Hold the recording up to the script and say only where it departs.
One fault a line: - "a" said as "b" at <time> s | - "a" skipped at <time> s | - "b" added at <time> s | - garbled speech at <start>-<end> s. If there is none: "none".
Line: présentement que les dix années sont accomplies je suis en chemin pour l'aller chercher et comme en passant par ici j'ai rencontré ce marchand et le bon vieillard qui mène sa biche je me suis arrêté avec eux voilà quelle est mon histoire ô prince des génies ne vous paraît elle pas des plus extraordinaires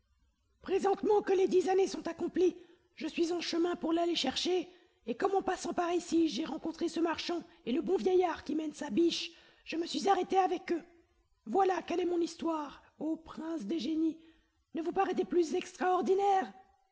- "elle pas" skipped at 15.2 s